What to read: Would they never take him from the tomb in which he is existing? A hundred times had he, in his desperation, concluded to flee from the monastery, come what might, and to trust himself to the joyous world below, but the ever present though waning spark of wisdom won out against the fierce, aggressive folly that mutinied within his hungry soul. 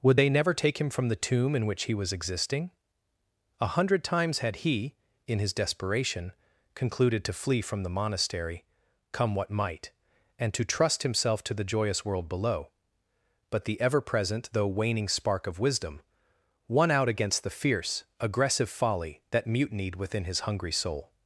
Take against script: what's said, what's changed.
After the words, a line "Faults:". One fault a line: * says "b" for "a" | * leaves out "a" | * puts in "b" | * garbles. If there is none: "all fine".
Would they never take him from the tomb in which he was existing? A hundred times had he, in his desperation, concluded to flee from the monastery, come what might, and to trust himself to the joyous world below, but the ever present though waning spark of wisdom won out against the fierce, aggressive folly that mutinied within his hungry soul.
Faults:
* says "was" for "is"